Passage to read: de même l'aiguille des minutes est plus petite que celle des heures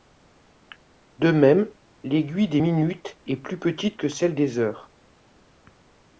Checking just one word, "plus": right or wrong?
right